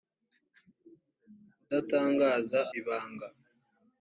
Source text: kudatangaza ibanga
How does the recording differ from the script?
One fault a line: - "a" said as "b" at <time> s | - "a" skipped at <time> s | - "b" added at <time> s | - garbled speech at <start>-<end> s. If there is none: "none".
none